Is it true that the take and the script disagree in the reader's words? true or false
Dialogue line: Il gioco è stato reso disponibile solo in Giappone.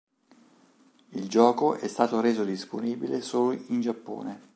false